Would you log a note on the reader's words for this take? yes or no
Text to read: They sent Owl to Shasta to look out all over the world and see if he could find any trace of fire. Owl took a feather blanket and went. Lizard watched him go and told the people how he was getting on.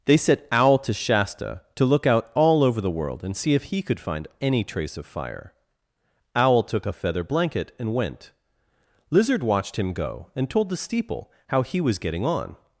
yes